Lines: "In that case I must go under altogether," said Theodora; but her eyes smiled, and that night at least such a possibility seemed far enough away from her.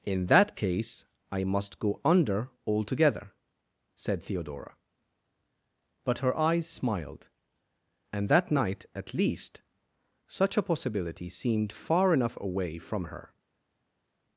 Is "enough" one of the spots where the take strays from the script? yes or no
no